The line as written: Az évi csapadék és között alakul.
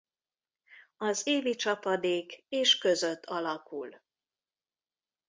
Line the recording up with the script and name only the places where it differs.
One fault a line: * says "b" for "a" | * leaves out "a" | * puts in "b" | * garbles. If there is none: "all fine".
all fine